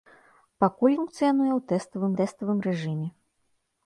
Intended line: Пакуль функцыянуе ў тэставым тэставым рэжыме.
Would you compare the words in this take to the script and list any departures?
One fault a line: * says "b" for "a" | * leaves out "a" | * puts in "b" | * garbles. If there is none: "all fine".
all fine